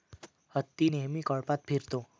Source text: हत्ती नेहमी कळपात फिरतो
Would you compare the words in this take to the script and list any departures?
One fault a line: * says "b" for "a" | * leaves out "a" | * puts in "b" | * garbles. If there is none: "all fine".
all fine